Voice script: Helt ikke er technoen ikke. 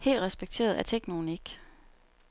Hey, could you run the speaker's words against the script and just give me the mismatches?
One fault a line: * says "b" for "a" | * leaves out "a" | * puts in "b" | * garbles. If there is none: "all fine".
* says "respekteret" for "ikke"